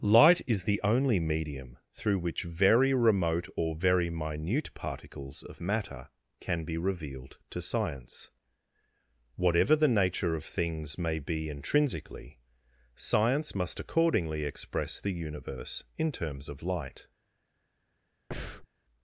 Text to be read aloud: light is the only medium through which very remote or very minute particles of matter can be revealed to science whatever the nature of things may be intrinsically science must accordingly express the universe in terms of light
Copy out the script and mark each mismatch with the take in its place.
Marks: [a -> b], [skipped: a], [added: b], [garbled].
light is the only medium through which very remote or very minute particles of matter can be revealed to science whatever the nature of things may be intrinsically science must accordingly express the universe in terms of light